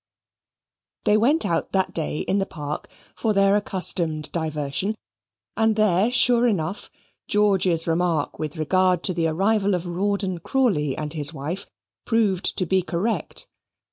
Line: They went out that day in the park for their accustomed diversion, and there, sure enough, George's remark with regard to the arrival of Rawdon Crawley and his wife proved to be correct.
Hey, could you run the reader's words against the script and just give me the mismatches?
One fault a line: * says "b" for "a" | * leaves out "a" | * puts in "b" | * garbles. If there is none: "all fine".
all fine